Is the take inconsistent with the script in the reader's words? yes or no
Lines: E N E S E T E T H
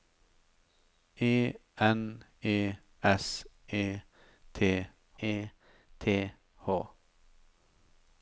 no